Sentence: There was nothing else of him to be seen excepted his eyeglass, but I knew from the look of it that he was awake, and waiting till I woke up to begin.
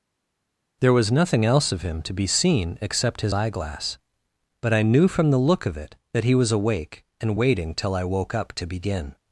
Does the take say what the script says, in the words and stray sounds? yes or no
no